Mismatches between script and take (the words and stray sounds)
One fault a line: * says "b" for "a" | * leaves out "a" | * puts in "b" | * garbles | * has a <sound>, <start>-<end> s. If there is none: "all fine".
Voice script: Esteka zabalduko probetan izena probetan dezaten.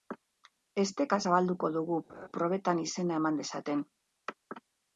* puts in "dugu"
* has a laugh, 2.1-2.3 s
* says "eman" for "probetan"